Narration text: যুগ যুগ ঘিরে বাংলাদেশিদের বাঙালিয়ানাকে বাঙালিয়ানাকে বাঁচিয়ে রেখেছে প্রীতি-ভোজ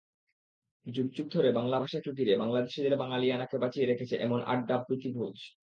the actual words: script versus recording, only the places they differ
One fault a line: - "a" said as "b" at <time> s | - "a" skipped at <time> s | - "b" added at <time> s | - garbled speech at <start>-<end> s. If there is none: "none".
- "ধরে বাংলা ভাষাকে" added at 1.3 s
- "বাঙালিয়ানাকে" skipped at 3.6 s
- "এমন আড্ডা" added at 4.2 s